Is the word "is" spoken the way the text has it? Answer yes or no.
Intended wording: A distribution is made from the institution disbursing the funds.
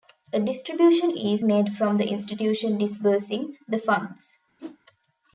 yes